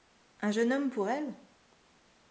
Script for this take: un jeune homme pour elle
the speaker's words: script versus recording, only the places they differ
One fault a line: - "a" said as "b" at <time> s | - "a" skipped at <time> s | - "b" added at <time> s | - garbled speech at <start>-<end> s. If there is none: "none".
none